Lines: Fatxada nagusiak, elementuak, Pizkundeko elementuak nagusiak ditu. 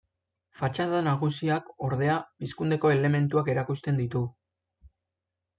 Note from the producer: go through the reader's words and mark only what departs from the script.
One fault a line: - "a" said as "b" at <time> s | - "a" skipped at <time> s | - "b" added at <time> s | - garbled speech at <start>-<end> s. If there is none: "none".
- "elementuak" said as "ordea" at 1.9 s
- "nagusiak" said as "erakusten" at 3.6 s